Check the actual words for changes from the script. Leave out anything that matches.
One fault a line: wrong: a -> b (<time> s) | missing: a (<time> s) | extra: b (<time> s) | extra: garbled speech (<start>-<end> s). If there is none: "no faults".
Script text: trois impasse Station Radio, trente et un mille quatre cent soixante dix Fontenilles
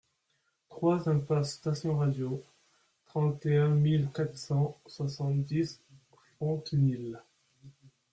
no faults